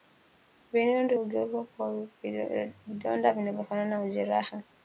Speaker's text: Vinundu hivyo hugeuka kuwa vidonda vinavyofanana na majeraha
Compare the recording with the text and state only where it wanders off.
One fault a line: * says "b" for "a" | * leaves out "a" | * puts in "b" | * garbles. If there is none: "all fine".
* leaves out "hivyo"